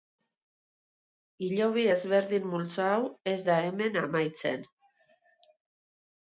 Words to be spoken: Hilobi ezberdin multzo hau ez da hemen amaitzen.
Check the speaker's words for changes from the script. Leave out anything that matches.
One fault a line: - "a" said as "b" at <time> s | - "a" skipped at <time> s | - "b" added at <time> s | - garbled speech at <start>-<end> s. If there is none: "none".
none